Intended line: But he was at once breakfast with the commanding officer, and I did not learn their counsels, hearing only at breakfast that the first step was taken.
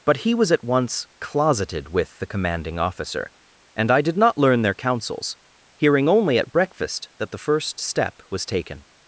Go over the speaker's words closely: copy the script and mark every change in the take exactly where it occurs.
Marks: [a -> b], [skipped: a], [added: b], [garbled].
But he was at once [breakfast -> closeted] with the commanding officer, and I did not learn their counsels, hearing only at breakfast that the first step was taken.